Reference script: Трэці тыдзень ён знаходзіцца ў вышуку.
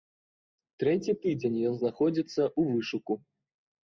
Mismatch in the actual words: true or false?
false